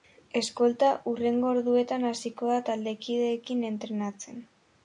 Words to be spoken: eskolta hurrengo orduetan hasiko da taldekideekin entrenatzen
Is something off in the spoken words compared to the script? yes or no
no